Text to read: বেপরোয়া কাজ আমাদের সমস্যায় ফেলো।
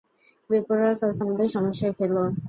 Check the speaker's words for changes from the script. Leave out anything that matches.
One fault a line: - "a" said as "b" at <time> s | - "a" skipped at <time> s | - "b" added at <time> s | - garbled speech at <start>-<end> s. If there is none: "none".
none